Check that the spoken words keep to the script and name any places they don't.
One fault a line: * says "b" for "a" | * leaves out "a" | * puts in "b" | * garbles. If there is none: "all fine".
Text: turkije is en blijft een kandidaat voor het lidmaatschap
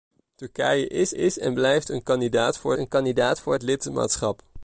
* puts in "is"
* puts in "een kandidaat voor"